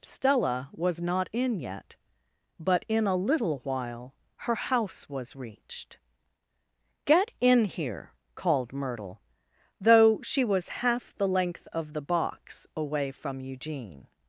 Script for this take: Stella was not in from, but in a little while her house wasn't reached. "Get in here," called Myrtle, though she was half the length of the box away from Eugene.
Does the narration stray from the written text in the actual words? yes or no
yes